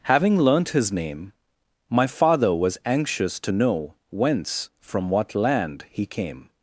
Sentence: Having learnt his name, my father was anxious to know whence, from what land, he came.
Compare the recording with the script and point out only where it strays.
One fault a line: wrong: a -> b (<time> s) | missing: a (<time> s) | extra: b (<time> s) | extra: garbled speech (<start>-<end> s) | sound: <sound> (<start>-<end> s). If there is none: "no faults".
no faults